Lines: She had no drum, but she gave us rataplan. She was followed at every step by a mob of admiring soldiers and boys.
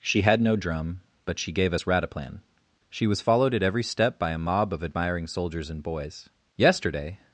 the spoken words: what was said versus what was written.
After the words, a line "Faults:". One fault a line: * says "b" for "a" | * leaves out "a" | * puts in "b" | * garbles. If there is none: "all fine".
She had no drum, but she gave us rataplan. She was followed at every step by a mob of admiring soldiers and boys. Yesterday
Faults:
* puts in "Yesterday"